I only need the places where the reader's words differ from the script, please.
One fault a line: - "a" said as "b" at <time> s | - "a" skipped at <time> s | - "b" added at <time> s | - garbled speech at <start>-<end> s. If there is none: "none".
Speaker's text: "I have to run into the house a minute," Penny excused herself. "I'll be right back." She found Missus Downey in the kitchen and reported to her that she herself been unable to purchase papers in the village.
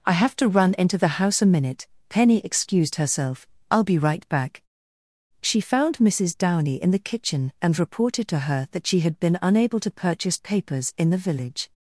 - "herself" said as "had" at 9.0 s